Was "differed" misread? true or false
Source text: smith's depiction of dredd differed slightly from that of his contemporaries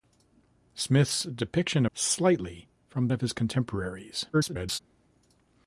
true